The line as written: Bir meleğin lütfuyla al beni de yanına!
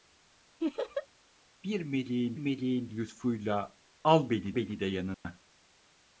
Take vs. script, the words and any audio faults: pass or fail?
fail